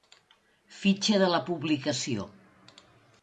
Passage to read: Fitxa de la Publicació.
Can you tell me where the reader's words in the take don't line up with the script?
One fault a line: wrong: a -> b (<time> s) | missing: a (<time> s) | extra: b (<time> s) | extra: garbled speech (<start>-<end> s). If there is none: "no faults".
no faults